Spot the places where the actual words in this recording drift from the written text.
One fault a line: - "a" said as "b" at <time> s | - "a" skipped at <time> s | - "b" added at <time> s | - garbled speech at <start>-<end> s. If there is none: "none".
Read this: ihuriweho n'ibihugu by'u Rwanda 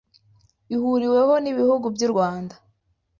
none